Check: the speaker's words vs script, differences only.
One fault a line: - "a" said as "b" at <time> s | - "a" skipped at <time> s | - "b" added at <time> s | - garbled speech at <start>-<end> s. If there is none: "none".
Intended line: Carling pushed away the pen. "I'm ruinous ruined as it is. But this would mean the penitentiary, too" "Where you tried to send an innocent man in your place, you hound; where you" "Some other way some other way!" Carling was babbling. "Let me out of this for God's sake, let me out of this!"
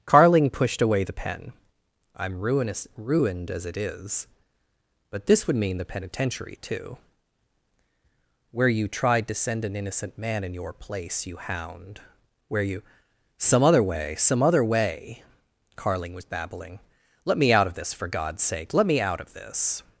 none